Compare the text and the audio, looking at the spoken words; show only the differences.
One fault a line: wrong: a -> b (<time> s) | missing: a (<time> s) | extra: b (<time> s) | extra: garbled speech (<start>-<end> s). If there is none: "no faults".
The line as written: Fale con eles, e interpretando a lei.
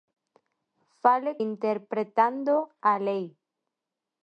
missing: con eles e (1.4 s)